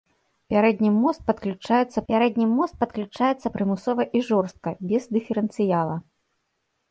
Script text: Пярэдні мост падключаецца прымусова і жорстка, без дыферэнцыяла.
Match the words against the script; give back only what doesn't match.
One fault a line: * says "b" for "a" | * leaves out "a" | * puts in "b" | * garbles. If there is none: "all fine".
* puts in "пярэдні мост падключаецца"